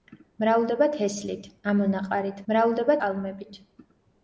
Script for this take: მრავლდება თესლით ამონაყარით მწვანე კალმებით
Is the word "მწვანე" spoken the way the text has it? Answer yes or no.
no